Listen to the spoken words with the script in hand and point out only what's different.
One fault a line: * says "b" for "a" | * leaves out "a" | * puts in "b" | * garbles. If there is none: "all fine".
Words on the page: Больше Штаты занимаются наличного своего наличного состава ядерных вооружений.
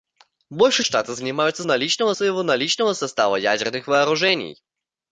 all fine